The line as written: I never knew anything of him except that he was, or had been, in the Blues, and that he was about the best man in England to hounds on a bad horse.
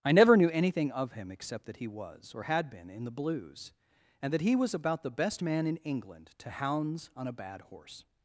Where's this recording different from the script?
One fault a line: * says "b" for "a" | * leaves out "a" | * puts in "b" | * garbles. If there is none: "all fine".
all fine